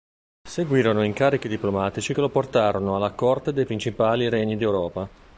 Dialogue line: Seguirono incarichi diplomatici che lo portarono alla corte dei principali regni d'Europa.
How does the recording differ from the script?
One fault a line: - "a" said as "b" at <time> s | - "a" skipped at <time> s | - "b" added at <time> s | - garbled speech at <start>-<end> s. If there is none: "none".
none